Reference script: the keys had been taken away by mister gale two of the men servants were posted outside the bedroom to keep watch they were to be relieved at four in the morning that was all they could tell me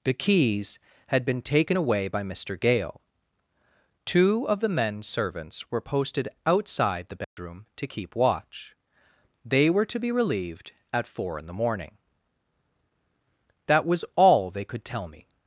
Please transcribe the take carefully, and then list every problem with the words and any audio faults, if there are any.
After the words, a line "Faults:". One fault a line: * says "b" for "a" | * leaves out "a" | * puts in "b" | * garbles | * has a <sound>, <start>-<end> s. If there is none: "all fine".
the keys had been taken away by mister gale two of the men servants were posted outside the bedroom to keep watch they were to be relieved at four in the morning that was all they could tell me
Faults:
* has a dropout, 7.2-7.4 s